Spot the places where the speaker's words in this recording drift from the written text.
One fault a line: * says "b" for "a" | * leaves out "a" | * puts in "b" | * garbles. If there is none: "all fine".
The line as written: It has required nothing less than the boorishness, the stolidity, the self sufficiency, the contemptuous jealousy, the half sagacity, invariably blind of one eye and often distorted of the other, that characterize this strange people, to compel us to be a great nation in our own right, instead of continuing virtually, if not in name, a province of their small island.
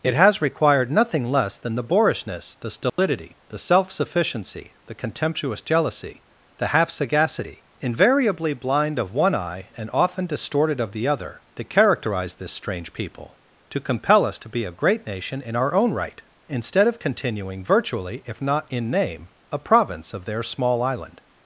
all fine